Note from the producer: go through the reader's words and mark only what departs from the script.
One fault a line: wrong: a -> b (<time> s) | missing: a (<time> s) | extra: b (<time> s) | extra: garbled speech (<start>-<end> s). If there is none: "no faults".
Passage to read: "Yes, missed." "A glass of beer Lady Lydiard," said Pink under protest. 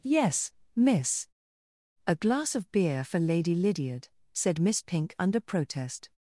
wrong: missed -> miss (0.8 s)
extra: for (3.0 s)
extra: Miss (4.6 s)